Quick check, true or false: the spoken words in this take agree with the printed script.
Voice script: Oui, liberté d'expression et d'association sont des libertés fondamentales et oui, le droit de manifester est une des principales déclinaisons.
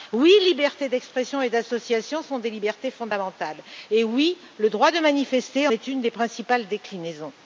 true